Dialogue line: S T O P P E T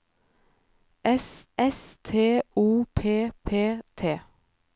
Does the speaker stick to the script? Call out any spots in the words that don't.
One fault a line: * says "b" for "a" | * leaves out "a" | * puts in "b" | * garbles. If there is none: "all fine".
* puts in "s"
* leaves out "E"